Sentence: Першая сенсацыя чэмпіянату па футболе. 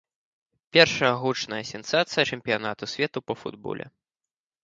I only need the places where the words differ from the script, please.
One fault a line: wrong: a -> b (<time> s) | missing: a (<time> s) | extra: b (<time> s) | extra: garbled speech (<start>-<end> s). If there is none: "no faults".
extra: гучная (1.2 s)
extra: свету (2.9 s)